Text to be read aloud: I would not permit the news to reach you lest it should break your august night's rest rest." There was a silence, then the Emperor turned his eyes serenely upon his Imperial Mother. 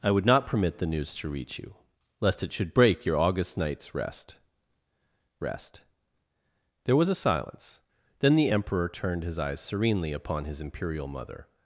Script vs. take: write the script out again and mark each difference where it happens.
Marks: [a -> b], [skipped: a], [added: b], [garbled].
I would not permit the news to reach you lest it should break your august night's rest rest." There was a silence, then the Emperor turned his eyes serenely upon his Imperial Mother.